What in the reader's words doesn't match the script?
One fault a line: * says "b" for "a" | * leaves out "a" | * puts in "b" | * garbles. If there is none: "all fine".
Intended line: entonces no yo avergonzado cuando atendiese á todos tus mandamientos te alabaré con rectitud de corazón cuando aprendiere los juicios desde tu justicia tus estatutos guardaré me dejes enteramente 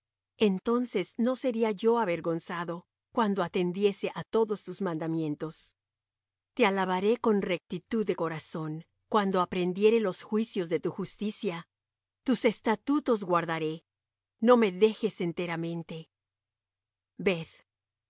* puts in "sería"
* says "de" for "desde"
* puts in "no"